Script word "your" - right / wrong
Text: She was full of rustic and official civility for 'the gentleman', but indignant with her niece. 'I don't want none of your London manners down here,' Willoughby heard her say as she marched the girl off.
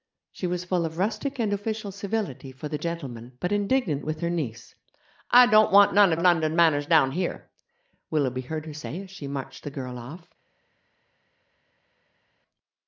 wrong